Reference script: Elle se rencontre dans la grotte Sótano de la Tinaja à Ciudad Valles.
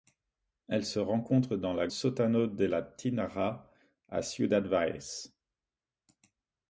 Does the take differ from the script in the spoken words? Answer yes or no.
yes